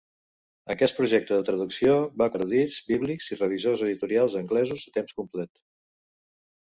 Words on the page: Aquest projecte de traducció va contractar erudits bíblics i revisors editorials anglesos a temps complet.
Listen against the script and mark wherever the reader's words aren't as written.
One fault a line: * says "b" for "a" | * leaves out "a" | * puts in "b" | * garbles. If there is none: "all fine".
* leaves out "contractar"